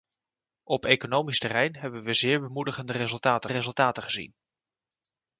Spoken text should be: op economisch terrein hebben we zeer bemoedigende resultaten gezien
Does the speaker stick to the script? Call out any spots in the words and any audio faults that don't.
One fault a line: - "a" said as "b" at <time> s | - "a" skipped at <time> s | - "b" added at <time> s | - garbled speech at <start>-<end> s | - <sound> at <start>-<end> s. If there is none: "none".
- "resultaten" added at 3.5 s